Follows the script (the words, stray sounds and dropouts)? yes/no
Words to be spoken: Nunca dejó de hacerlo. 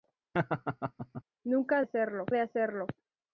no